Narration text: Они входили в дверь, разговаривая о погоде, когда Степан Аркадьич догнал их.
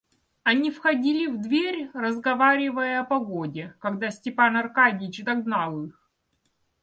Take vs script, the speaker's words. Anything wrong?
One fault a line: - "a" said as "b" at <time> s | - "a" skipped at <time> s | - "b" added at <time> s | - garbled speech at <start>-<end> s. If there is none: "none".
none